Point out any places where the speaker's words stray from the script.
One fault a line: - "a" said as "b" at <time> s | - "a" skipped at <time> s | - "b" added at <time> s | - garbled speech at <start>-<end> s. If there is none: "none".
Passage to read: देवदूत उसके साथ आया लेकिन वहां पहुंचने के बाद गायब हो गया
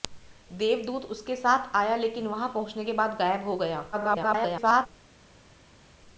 - garbled speech at 3.9-4.9 s